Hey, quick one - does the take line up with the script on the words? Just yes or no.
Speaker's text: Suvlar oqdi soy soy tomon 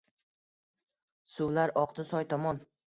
no